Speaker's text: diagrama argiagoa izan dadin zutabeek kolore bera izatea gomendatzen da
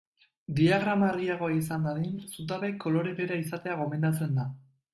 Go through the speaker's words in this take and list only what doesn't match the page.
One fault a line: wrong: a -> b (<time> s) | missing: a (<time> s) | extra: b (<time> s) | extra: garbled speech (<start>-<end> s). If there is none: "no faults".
no faults